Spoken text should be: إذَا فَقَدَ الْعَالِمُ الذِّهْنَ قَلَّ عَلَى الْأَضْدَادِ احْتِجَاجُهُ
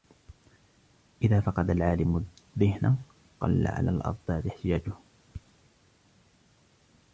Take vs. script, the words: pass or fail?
pass